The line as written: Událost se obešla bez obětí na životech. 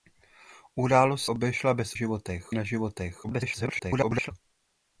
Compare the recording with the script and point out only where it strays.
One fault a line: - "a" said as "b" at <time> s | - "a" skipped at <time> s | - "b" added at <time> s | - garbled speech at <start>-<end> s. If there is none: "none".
- "se" skipped at 1.2 s
- "obětí" said as "životech" at 1.9 s
- garbled speech at 3.2-4.3 s